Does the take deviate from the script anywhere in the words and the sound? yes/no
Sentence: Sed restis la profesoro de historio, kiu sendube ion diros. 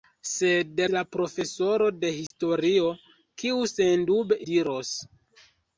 yes